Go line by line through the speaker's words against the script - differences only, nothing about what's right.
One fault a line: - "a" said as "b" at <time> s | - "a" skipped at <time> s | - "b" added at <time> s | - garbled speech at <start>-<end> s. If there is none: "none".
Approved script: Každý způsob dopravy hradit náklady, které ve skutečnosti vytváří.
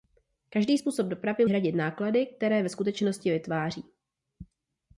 none